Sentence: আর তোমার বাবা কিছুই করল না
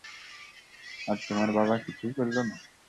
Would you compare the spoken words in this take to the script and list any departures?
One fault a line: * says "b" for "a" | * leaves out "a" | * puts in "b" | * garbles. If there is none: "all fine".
all fine